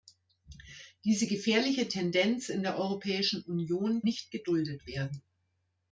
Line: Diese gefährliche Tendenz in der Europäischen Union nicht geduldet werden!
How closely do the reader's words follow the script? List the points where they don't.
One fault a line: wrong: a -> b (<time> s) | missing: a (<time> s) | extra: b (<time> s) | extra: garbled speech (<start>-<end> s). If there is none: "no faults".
no faults